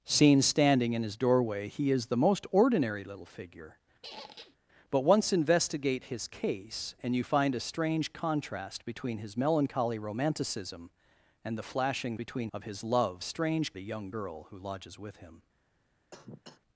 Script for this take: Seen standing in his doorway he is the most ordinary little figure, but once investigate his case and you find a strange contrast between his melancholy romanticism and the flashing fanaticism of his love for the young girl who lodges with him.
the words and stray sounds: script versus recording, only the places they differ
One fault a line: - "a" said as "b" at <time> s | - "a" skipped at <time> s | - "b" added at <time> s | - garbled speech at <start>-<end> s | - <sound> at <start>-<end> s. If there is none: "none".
- squeak at 4.0-4.6 s
- "fanaticism" said as "between" at 12.2 s
- "for" said as "strange" at 13.2 s
- cough at 16.1-16.6 s